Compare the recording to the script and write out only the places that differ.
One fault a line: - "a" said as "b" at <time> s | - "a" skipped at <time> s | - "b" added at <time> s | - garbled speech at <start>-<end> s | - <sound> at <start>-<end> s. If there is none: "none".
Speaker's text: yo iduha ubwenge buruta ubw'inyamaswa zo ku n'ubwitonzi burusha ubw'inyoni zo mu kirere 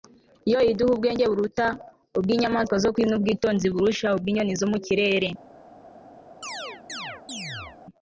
- chirp at 6.4-7.8 s